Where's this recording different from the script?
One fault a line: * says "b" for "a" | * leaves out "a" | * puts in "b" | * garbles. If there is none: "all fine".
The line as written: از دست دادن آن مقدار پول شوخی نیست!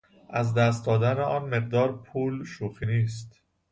all fine